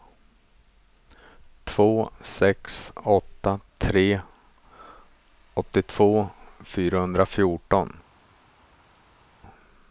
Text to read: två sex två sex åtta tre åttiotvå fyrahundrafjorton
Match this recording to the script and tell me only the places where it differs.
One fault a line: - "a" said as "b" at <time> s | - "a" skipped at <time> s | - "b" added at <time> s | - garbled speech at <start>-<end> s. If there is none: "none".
- "två sex" skipped at 2.9 s